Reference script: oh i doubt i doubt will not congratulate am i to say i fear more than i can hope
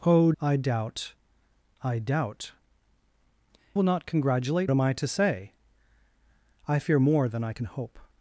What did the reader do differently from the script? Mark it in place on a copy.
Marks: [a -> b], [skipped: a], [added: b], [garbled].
oh i doubt i doubt will not congratulate am i to say i fear more than i can hope